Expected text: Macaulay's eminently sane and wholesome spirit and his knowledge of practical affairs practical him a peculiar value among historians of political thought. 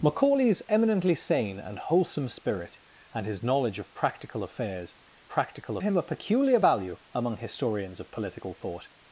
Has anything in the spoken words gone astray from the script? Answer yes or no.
no